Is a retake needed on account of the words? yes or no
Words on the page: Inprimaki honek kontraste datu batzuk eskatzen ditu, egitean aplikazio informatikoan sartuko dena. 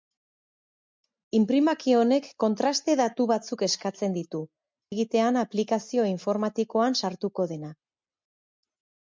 no